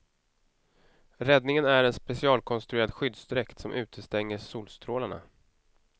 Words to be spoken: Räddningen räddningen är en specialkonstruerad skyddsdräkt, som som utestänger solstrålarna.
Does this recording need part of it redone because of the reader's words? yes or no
yes